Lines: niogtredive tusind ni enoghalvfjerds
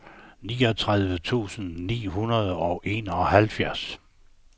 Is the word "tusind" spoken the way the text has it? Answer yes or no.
yes